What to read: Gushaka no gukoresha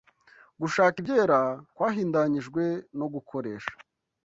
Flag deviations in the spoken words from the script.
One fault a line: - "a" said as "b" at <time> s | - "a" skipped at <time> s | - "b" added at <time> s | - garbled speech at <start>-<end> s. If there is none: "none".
- "ibyera kwahindanyijwe" added at 1.0 s